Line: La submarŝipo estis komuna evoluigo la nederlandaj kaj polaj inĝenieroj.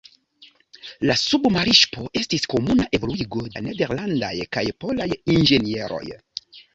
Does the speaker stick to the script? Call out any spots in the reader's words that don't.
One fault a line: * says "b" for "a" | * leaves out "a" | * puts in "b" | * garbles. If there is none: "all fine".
all fine